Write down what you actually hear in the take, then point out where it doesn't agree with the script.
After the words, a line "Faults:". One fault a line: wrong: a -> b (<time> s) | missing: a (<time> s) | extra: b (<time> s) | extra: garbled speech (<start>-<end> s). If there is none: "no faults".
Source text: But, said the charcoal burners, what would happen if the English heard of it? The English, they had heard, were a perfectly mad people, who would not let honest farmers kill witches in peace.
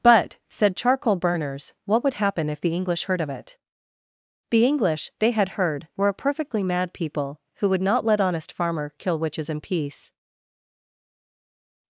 But, said charcoal burners, what would happen if the English heard of it? The English, they had heard, were a perfectly mad people, who would not let honest farmer kill witches in peace.
Faults:
missing: the (0.8 s)
wrong: farmers -> farmer (8.5 s)